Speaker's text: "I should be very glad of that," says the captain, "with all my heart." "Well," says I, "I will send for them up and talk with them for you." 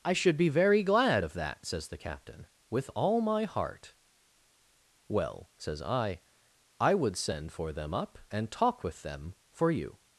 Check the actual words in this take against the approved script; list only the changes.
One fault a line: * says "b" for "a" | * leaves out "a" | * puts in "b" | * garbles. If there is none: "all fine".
* says "would" for "will"